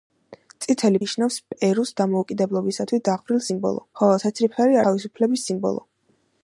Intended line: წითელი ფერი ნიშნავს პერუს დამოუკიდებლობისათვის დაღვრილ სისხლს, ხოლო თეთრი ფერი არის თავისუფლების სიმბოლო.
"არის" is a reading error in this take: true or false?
true